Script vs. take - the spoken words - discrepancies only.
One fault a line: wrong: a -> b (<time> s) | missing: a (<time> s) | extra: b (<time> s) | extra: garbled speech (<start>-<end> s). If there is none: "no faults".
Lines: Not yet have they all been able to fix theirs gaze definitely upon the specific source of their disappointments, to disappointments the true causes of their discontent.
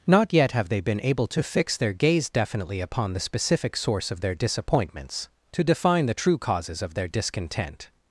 missing: all (0.8 s)
wrong: theirs -> their (1.8 s)
wrong: disappointments -> define (5.6 s)